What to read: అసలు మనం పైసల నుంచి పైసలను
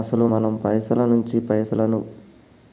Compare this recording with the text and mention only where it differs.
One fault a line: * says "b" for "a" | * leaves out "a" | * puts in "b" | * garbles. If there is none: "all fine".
all fine